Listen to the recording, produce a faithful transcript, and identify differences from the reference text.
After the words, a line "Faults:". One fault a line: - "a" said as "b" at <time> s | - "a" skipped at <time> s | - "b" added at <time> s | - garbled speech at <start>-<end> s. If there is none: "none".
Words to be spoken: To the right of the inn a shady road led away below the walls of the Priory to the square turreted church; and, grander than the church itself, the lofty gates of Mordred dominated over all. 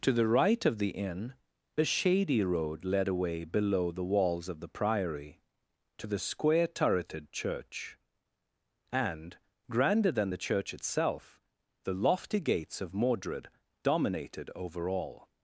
To the right of the inn a shady road led away below the walls of the Priory to the square turreted church; and, grander than the church itself, the lofty gates of Mordred dominated over all.
Faults:
none